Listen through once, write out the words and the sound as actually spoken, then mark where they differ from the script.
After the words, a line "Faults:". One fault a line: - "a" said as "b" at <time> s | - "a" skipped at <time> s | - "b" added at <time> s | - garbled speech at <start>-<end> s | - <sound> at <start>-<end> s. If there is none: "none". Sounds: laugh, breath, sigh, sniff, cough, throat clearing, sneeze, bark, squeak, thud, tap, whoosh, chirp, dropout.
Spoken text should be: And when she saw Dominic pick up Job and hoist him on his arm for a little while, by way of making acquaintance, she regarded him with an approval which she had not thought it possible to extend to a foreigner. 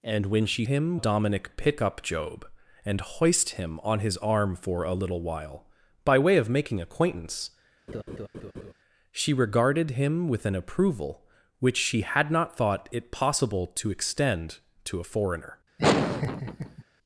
And when she him Dominic pick up Job and hoist him on his arm for a little while, by way of making acquaintance, she regarded him with an approval which she had not thought it possible to extend to a foreigner.
Faults:
- "saw" said as "him" at 0.6 s
- laugh at 7.9-8.7 s
- laugh at 15.8-16.8 s